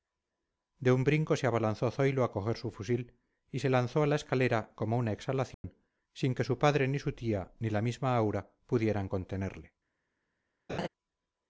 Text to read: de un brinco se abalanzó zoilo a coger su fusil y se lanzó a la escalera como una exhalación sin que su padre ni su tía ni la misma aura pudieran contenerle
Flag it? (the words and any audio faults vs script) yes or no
yes